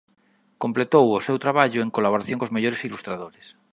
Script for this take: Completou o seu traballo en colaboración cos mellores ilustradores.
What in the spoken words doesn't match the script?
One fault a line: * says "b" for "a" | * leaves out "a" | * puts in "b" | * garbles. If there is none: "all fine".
all fine